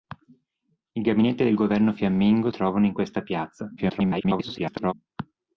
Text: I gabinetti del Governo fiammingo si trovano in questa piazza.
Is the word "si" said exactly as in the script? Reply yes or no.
no